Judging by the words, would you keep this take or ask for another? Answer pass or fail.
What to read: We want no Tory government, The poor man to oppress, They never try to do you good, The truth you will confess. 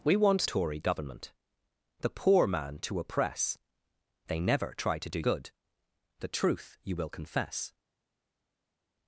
fail